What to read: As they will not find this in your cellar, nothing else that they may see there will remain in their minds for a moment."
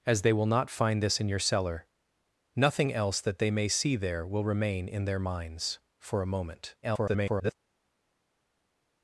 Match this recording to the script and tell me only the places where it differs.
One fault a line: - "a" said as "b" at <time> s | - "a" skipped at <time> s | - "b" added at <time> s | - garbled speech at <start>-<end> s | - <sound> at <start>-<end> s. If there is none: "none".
- garbled speech at 6.8-7.5 s